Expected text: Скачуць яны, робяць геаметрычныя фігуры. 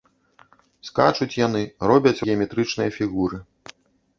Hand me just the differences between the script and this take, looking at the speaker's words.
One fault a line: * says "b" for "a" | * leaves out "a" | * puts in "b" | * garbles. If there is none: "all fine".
all fine